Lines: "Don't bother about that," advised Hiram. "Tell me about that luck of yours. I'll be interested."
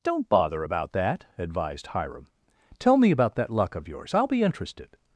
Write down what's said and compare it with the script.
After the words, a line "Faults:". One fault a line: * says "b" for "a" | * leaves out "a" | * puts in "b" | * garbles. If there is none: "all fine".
"Don't bother about that," advised Hiram. "Tell me about that luck of yours. I'll be interested."
Faults:
all fine